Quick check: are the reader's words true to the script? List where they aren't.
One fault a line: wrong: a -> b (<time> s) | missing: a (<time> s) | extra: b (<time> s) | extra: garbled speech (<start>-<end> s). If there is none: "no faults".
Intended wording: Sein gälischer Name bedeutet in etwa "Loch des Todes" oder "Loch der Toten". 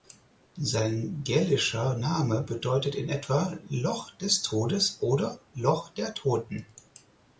no faults